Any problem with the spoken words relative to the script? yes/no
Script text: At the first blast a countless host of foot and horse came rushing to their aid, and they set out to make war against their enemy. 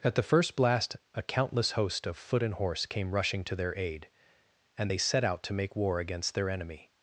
no